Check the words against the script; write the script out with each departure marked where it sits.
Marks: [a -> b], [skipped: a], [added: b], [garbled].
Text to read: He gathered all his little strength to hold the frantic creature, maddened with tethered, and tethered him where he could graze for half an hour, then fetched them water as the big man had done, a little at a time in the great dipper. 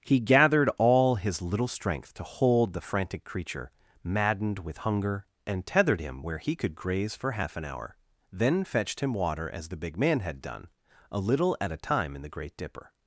He gathered all his little strength to hold the frantic creature, maddened with [tethered, -> hunger] and tethered him where he could graze for half an hour, then fetched [them -> him] water as the big man had done, a little at a time in the great dipper.